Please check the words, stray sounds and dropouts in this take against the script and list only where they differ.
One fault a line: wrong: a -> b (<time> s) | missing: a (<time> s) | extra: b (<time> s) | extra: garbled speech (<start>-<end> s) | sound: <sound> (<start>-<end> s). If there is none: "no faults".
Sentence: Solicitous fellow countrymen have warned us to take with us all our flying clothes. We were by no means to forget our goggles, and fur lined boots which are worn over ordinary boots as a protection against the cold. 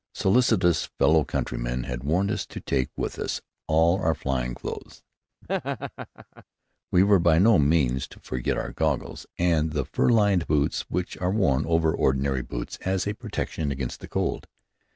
wrong: have -> had (1.8 s)
sound: laugh (5.4-6.4 s)
extra: the (9.7 s)